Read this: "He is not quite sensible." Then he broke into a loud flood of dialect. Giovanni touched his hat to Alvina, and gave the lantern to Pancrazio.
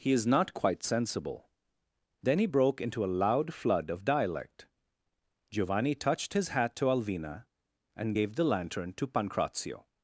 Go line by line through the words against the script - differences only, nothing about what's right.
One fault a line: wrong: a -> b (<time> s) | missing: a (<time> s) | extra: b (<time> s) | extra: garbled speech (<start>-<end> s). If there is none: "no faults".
no faults